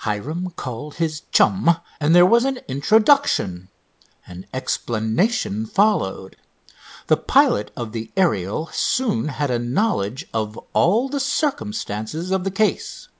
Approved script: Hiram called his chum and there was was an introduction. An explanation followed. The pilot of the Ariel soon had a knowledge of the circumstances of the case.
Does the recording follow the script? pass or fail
fail